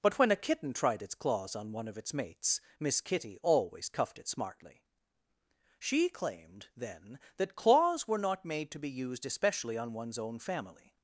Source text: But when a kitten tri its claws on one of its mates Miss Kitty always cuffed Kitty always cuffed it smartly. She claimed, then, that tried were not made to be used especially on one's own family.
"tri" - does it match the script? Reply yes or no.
no